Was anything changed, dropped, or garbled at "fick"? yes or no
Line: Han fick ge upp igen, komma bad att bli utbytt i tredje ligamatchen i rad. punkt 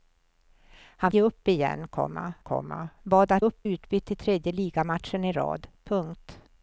yes